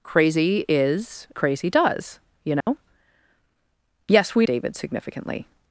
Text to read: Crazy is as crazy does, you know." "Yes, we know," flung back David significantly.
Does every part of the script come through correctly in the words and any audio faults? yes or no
no